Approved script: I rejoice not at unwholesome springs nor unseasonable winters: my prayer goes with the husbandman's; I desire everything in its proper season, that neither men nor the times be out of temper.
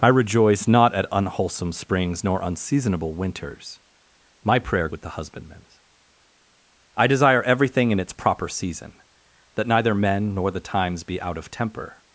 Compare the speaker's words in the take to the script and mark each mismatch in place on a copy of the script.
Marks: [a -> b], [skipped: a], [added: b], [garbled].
I rejoice not at unwholesome springs nor unseasonable winters: my prayer [skipped: goes] with the husbandman's; I desire everything in its proper season, that neither men nor the times be out of temper.